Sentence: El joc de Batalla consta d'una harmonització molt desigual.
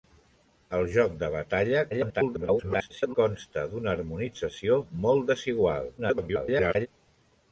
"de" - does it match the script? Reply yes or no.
yes